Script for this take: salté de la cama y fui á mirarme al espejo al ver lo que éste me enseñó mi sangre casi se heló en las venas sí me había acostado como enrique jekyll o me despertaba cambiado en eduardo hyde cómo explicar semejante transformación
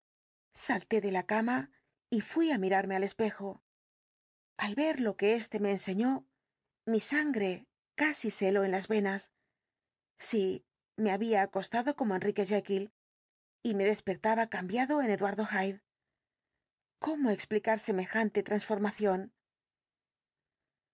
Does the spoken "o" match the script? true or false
false